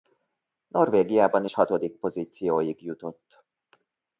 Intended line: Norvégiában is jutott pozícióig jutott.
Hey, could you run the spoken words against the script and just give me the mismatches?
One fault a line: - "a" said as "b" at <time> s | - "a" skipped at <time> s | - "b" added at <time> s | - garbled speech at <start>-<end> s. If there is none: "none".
- "jutott" said as "hatodik" at 1.5 s